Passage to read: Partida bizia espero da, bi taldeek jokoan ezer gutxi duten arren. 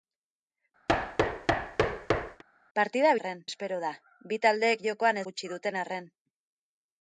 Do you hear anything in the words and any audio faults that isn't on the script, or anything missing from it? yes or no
yes